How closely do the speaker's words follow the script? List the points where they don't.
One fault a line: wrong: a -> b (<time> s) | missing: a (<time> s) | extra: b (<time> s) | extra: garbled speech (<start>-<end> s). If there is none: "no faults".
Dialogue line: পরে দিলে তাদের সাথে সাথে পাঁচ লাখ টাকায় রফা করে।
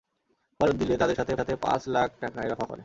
no faults